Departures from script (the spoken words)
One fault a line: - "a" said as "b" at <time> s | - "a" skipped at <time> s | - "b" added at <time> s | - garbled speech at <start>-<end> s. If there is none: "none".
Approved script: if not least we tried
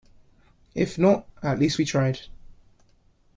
- "at" added at 1.4 s